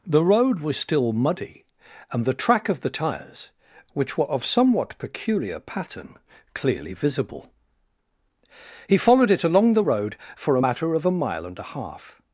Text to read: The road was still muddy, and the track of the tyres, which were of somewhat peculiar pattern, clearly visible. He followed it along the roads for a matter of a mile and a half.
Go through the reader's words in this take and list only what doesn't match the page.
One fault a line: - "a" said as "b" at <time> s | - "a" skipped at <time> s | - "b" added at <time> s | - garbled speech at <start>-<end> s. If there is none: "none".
- "roads" said as "road" at 9.8 s